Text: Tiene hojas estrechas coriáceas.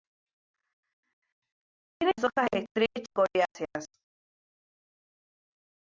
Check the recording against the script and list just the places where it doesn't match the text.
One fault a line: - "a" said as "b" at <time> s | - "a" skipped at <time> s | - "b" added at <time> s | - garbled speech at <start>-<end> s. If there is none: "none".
none